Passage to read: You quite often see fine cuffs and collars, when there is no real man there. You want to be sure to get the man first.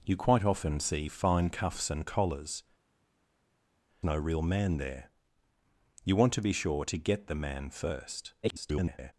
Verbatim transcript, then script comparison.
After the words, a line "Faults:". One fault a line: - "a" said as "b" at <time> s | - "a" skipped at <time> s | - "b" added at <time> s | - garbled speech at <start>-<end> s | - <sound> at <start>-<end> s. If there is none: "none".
You quite often see fine cuffs and collars, no real man there. You want to be sure to get the man first. [garbled]
Faults:
- "when there is" skipped at 2.6 s
- garbled speech at 8.4-9.1 s